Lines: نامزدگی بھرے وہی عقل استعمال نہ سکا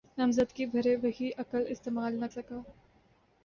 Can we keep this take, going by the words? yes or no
yes